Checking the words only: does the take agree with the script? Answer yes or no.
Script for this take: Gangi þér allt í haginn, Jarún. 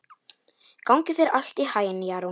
yes